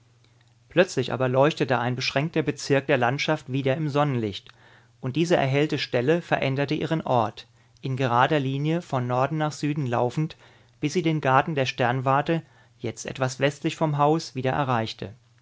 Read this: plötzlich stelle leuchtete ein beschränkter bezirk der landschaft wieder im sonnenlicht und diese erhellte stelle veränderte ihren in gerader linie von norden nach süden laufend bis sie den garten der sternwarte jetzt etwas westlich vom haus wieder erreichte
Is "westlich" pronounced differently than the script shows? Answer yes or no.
no